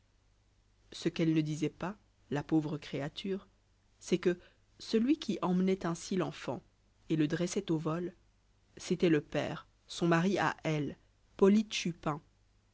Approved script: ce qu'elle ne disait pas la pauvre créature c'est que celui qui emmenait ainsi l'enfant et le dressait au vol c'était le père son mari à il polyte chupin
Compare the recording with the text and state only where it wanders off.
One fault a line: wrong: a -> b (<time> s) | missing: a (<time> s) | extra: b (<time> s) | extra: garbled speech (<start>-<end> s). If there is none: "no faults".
wrong: il -> elle (10.6 s)